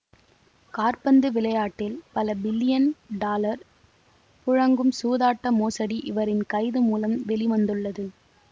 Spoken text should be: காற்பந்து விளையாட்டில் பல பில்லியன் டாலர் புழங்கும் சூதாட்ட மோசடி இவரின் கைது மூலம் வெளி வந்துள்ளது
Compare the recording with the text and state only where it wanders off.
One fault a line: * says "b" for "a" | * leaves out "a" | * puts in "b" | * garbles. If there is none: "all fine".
all fine